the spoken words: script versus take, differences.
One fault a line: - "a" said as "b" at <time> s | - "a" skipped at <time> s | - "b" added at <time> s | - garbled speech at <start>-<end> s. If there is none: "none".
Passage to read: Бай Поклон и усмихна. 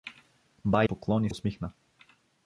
none